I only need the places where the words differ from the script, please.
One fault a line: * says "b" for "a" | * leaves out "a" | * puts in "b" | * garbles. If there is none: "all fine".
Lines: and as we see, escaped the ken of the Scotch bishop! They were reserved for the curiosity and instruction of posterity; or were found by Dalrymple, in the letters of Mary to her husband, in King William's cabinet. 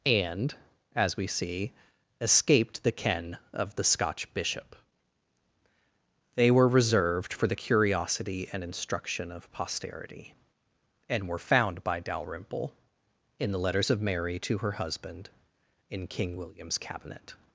* says "and" for "or"